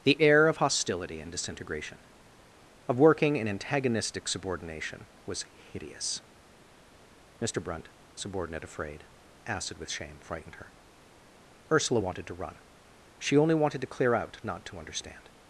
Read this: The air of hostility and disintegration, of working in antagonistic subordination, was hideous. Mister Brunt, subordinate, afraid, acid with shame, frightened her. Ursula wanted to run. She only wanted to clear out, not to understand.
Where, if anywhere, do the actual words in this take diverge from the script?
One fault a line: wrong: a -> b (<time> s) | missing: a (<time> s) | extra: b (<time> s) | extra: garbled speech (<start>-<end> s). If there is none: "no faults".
no faults